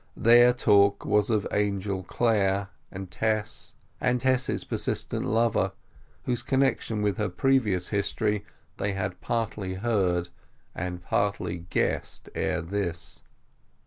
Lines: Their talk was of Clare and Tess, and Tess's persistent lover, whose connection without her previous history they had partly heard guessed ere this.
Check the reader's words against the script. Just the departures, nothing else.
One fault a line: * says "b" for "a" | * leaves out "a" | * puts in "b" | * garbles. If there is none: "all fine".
* puts in "Angel"
* says "with" for "without"
* puts in "and partly"